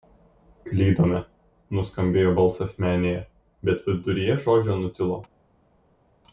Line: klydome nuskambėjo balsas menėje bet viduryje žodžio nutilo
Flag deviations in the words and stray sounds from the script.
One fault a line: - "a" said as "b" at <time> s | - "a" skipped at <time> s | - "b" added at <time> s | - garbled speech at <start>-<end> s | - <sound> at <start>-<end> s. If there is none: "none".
none